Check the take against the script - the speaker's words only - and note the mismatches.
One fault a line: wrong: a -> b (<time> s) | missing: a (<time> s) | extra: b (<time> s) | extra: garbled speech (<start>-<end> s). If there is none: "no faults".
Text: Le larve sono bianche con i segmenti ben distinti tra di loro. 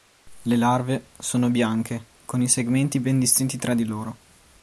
no faults